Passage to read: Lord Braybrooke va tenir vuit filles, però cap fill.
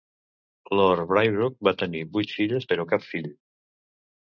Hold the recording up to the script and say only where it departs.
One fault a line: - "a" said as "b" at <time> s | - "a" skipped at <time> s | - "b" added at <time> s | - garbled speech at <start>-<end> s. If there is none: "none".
none